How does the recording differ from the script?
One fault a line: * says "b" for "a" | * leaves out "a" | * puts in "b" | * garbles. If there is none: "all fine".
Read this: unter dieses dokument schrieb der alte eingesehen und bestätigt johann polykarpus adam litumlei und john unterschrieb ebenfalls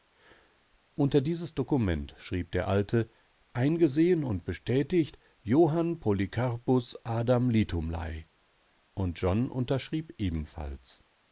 all fine